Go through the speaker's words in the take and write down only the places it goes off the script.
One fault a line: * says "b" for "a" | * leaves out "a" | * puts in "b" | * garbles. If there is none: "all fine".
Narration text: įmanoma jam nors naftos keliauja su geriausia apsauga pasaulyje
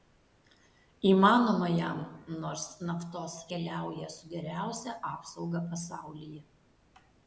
all fine